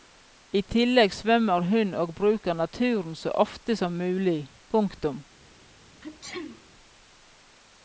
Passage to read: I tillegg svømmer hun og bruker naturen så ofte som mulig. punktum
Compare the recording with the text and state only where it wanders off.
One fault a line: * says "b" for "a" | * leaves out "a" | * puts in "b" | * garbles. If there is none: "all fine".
all fine